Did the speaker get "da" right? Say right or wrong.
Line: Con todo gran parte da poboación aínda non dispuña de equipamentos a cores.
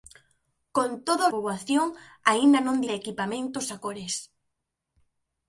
wrong